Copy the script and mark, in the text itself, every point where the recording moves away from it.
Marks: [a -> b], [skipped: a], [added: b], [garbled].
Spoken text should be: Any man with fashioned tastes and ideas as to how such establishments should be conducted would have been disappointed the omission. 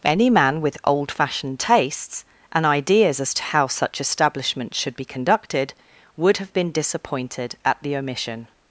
Any man with [added: old] fashioned tastes and ideas as to how such establishments should be conducted would have been disappointed [added: at] the omission.